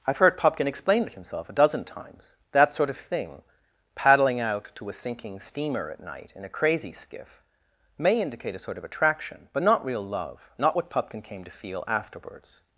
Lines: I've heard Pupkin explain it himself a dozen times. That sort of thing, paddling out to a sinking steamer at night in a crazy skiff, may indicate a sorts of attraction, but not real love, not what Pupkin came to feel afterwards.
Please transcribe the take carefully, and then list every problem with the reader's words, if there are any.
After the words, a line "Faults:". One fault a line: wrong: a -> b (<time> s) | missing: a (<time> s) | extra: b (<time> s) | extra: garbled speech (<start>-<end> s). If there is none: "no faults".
I've heard Pupkin explain it himself a dozen times. That sort of thing, paddling out to a sinking steamer at night in a crazy skiff, may indicate a sort of attraction, but not real love, not what Pupkin came to feel afterwards.
Faults:
wrong: sorts -> sort (8.6 s)